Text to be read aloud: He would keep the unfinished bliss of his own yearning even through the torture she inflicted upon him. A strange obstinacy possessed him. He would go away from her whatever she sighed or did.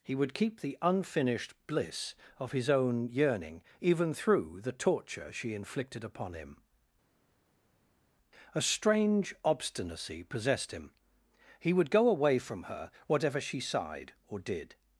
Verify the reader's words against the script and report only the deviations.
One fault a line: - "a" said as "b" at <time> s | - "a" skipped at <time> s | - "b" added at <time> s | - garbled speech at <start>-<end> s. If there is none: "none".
none